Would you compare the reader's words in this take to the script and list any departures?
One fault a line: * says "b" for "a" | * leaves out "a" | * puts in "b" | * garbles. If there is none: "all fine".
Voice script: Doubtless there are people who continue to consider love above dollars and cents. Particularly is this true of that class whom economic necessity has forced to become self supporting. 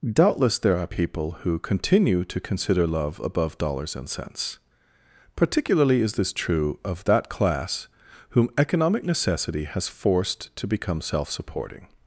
all fine